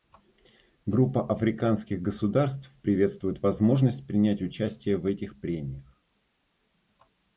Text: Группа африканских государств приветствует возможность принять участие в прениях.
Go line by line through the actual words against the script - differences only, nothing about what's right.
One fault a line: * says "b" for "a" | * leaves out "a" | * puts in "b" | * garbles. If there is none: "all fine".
* puts in "этих"